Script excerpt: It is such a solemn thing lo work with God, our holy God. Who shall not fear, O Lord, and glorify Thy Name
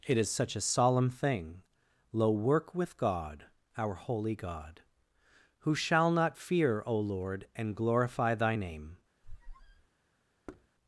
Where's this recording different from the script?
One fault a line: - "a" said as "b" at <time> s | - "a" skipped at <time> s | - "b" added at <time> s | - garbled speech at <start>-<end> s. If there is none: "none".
none